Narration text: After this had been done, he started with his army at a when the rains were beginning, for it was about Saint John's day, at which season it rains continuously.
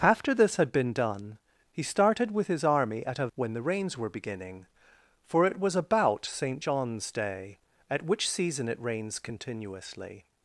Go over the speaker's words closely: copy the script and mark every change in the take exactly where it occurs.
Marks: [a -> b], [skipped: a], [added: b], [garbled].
After this had been done, he started with his army at a when the rains were beginning, for it was about Saint John's day, at which season it rains continuously.